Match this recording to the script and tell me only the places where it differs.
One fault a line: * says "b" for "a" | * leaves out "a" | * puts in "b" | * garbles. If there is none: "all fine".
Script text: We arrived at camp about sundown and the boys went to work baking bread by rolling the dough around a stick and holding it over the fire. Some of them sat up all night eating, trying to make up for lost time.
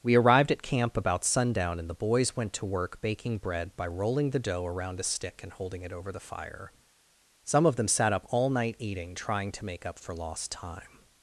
all fine